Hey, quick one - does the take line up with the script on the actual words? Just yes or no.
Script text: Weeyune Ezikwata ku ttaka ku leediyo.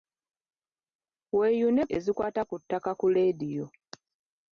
yes